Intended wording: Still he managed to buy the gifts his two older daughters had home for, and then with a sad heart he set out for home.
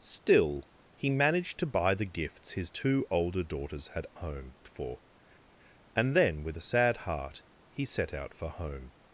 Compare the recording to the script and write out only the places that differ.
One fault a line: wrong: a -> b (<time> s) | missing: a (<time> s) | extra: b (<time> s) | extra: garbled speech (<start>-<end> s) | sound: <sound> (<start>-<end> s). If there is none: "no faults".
no faults